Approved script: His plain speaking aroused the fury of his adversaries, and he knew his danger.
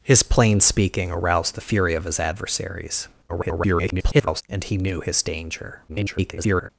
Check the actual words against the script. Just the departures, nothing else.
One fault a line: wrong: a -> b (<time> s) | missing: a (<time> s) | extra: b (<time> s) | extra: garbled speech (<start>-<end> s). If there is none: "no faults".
extra: garbled speech (3.3-4.4 s)
extra: garbled speech (5.9-6.7 s)